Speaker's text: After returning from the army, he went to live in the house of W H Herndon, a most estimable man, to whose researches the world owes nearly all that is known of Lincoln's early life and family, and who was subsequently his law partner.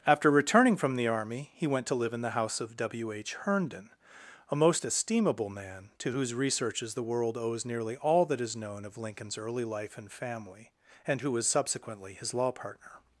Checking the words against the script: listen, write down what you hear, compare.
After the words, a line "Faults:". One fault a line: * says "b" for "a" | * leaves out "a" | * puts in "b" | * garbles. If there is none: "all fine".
After returning from the army, he went to live in the house of W H Herndon, a most estimable man, to whose researches the world owes nearly all that is known of Lincoln's early life and family, and who was subsequently his law partner.
Faults:
all fine